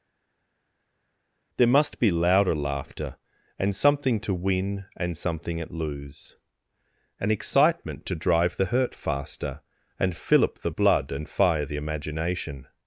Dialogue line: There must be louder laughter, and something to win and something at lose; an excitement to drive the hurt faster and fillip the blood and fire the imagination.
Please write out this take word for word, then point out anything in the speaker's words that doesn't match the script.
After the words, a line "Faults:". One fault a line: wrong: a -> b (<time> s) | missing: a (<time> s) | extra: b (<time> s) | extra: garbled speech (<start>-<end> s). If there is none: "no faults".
There must be louder laughter, and something to win and something at lose; an excitement to drive the hurt faster and fillip the blood and fire the imagination.
Faults:
no faults